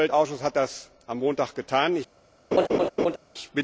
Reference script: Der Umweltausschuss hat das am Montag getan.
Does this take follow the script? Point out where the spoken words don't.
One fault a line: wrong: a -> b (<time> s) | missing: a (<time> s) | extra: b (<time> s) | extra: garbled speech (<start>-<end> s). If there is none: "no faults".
no faults